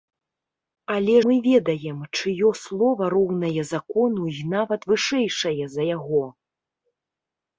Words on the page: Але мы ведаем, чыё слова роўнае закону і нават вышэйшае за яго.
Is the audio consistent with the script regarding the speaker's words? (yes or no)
yes